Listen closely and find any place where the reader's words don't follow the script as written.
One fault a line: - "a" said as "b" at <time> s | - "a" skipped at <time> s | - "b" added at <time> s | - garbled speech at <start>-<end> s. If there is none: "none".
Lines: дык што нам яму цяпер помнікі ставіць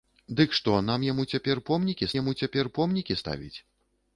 - "яму цяпер помнікі" added at 2.2 s